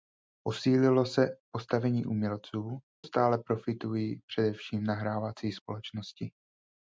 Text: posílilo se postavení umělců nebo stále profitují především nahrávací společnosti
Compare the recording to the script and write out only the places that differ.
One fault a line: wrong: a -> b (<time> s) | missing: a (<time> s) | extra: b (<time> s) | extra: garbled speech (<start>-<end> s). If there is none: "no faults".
missing: nebo (2.8 s)